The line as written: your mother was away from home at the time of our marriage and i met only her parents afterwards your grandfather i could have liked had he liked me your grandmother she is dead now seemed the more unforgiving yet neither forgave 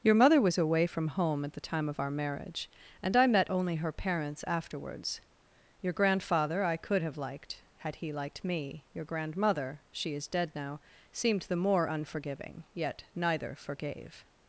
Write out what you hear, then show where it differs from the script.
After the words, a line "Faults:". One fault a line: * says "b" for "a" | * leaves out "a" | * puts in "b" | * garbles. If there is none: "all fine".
your mother was away from home at the time of our marriage and i met only her parents afterwards your grandfather i could have liked had he liked me your grandmother she is dead now seemed the more unforgiving yet neither forgave
Faults:
all fine